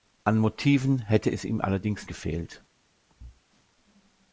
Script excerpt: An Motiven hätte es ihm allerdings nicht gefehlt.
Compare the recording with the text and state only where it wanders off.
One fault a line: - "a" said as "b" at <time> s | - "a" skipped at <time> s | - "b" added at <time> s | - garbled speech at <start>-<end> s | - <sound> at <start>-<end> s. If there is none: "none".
- "nicht" skipped at 2.1 s
- thud at 3.1-3.4 s